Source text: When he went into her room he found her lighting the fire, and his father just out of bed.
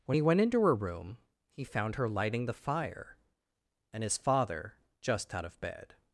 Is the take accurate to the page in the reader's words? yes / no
yes